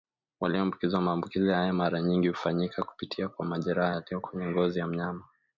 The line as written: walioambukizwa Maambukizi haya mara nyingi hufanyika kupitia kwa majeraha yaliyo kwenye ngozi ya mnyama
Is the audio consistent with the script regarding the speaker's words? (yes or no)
yes